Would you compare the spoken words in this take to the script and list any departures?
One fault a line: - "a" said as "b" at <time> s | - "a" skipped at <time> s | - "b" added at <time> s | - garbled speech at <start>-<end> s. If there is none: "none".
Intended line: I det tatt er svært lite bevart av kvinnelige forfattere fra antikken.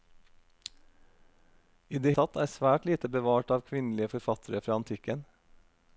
none